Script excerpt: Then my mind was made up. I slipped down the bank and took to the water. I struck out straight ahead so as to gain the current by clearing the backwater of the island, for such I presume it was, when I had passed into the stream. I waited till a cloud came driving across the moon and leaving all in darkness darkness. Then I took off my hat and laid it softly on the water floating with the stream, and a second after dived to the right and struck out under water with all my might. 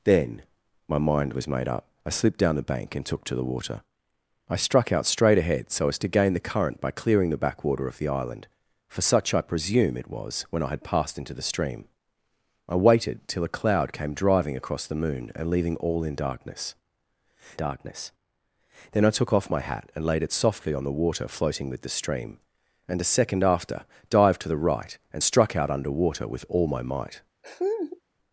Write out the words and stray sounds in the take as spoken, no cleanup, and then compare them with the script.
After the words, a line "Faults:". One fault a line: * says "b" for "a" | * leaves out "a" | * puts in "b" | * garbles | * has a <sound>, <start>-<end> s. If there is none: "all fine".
Then my mind was made up. I slipped down the bank and took to the water. I struck out straight ahead so as to gain the current by clearing the backwater of the island, for such I presume it was, when I had passed into the stream. I waited till a cloud came driving across the moon and leaving all in darkness darkness. Then I took off my hat and laid it softly on the water floating with the stream, and a second after dived to the right and struck out under water with all my might.
Faults:
* has a laugh, 27.4-28.0 s